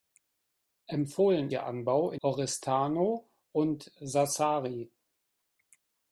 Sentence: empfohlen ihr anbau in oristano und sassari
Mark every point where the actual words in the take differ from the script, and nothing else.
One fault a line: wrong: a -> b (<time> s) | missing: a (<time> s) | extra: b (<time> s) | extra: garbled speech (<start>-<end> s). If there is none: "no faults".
no faults